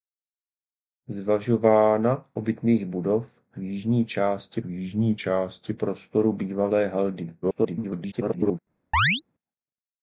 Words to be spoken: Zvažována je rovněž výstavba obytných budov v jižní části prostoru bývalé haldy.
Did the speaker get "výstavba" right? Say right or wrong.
wrong